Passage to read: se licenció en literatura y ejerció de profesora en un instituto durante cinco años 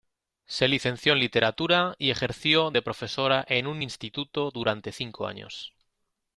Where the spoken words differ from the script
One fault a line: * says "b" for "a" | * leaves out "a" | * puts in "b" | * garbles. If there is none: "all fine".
all fine